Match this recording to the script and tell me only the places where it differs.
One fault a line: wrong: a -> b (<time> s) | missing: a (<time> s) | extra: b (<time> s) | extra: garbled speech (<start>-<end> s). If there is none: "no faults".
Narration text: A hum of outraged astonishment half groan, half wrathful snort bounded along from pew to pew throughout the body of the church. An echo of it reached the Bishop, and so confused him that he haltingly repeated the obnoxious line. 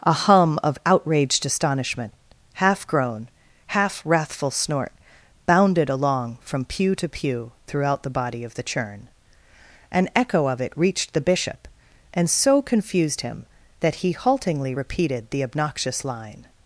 wrong: church -> churn (8.6 s)